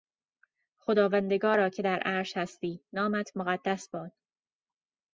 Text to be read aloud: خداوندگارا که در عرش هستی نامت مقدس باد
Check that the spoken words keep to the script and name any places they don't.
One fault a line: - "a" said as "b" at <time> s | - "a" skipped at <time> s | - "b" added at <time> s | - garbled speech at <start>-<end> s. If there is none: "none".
none